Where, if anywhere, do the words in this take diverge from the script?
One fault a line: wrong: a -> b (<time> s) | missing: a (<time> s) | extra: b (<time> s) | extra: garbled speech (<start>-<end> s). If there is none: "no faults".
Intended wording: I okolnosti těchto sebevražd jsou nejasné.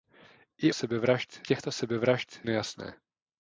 wrong: okolnosti -> sebevražd (0.7 s)
missing: jsou (2.4 s)